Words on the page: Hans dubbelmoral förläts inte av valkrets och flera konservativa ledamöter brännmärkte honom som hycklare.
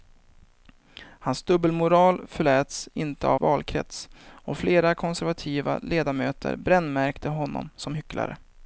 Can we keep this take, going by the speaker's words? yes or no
yes